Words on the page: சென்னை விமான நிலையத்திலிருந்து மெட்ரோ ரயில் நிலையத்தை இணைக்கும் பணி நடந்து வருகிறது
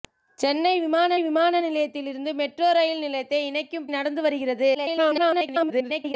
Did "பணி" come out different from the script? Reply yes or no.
yes